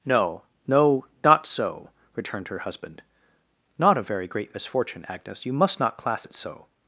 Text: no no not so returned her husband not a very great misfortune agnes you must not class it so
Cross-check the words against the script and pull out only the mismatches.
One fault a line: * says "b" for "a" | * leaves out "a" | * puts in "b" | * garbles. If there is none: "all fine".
all fine